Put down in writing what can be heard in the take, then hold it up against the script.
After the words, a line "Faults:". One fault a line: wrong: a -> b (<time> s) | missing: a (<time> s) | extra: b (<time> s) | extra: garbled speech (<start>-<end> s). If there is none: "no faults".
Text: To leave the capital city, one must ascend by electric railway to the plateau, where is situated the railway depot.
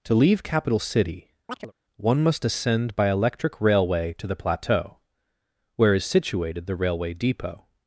To leave capital city, one must ascend by electric railway to the plateau, where is situated the railway depot.
Faults:
missing: the (0.4 s)